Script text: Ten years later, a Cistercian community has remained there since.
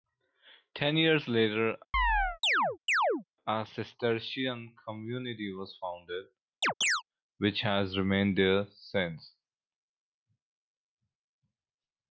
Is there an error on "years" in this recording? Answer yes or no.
no